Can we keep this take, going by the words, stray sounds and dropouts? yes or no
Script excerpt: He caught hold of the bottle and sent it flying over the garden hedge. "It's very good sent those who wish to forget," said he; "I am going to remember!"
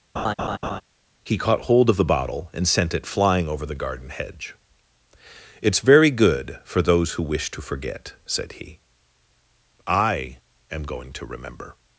no